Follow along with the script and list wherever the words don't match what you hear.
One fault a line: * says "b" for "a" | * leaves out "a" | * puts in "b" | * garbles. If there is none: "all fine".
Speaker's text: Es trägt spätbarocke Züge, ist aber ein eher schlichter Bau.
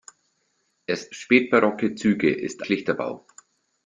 * leaves out "trägt"
* leaves out "aber ein eher"